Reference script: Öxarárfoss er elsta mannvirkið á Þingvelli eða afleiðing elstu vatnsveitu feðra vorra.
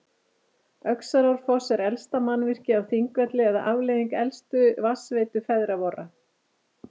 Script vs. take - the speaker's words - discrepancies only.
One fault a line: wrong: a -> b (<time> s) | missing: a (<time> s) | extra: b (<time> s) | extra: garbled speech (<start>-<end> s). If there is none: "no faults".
no faults